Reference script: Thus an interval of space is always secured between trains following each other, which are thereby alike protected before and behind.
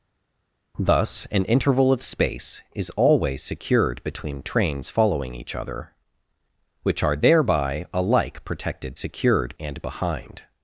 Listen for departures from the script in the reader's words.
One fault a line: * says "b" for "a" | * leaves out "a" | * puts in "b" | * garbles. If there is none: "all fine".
* says "secured" for "before"